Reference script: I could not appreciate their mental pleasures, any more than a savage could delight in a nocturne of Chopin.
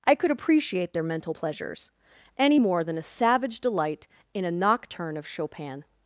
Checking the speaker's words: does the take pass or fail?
fail